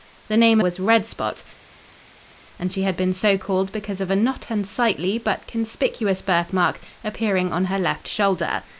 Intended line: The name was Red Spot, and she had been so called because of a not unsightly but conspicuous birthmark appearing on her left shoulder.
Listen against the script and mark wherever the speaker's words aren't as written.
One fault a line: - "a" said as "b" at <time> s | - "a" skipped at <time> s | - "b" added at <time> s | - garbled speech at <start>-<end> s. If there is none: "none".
none